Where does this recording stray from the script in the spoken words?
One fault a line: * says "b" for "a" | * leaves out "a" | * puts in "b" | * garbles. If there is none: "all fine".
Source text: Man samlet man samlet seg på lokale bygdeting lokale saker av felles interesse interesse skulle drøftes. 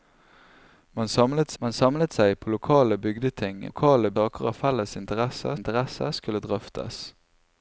all fine